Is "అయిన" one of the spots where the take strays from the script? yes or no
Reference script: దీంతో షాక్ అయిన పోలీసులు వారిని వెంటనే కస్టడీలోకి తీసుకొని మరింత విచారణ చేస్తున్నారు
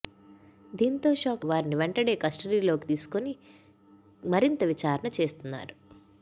yes